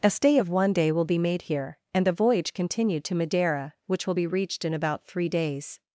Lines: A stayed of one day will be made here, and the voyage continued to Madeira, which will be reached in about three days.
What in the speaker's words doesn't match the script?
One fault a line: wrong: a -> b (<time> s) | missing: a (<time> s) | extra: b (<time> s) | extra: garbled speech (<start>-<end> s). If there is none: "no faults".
wrong: stayed -> stay (0.1 s)